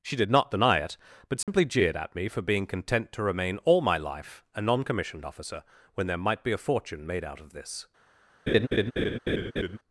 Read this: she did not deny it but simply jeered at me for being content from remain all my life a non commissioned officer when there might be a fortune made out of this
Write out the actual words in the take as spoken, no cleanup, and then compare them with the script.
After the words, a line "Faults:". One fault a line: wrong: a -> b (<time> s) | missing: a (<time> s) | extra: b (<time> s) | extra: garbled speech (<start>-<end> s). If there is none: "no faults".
she did not deny it but simply jeered at me for being content to remain all my life a non commissioned officer when there might be a fortune made out of this
Faults:
wrong: from -> to (3.1 s)